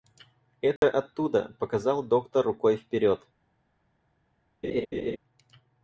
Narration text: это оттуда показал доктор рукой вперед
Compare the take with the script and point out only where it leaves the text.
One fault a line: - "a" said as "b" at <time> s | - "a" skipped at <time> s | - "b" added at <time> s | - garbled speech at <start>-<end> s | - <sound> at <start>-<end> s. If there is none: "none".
- dropout at 0.8-0.8 s
- laugh at 4.6-5.2 s